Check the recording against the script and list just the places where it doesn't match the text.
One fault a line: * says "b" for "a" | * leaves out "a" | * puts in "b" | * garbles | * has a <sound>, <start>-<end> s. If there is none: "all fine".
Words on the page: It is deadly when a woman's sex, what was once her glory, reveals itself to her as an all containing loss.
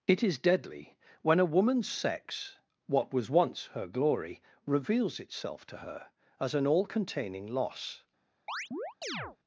* has a chirp, 8.5-9.4 s